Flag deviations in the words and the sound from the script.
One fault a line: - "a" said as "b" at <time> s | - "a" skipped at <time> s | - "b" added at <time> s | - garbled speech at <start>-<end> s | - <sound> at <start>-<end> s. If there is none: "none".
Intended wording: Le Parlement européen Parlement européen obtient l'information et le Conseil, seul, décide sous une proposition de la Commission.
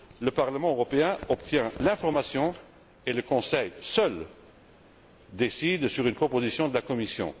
- "Parlement européen" skipped at 1.2 s
- "sous" said as "sur" at 5.9 s